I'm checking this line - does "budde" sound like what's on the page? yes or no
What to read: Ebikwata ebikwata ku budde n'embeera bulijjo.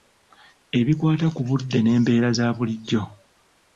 yes